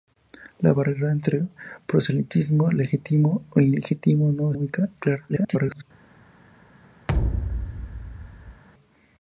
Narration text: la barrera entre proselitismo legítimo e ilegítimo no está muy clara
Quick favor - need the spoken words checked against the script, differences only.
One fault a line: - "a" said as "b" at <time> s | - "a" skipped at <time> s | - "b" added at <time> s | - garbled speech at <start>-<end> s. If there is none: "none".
- "está" skipped at 4.5 s
- garbled speech at 5.3-5.8 s